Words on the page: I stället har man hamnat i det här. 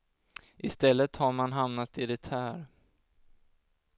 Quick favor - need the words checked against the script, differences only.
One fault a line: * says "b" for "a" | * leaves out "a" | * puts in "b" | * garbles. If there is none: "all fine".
all fine